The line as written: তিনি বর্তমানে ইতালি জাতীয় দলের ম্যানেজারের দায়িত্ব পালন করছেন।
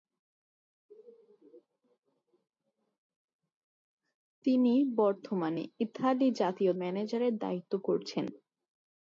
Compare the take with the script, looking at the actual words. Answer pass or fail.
fail